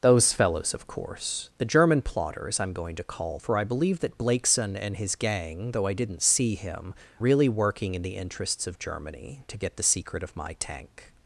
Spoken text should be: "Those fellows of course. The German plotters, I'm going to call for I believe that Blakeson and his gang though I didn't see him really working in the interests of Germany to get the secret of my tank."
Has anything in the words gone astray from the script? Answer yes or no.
no